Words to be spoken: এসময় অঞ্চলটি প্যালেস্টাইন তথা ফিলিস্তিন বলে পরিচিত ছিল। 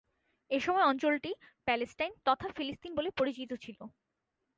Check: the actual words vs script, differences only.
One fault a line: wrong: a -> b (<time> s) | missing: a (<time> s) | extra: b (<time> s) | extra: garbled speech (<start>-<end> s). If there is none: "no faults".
no faults